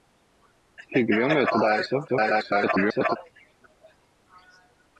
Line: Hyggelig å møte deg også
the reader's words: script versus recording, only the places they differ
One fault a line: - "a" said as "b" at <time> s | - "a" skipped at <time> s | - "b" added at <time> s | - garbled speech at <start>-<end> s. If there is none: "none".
- garbled speech at 2.1-3.2 s